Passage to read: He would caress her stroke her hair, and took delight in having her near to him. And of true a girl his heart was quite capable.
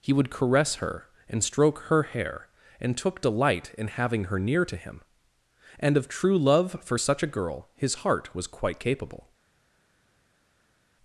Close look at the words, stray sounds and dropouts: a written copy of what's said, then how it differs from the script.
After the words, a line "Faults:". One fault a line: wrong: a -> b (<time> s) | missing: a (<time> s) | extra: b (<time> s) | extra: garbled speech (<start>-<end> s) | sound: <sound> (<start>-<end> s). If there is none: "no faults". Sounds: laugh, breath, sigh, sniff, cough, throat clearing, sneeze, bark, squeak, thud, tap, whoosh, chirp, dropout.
He would caress her and stroke her hair, and took delight in having her near to him. And of true love for such a girl his heart was quite capable.
Faults:
extra: and (1.3 s)
extra: love for such (6.4 s)